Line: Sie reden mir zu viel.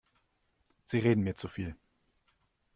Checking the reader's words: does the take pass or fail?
pass